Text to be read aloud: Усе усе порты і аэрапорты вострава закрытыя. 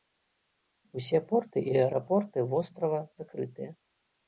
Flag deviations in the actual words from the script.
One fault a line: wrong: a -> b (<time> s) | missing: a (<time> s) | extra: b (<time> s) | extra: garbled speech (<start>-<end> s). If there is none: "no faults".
missing: усе (1.2 s)